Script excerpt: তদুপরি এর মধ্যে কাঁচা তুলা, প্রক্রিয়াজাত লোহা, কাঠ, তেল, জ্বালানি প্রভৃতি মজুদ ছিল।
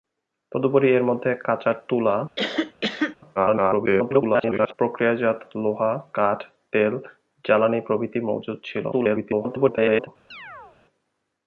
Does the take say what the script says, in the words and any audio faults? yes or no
no